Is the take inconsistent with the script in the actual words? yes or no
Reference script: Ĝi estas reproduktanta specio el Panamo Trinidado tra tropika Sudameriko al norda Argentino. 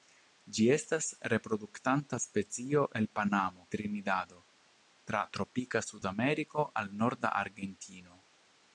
no